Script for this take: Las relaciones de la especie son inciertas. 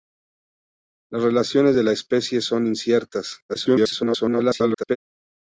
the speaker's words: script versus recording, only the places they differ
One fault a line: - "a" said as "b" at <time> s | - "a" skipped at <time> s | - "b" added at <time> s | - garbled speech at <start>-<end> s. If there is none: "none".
- garbled speech at 3.5-5.0 s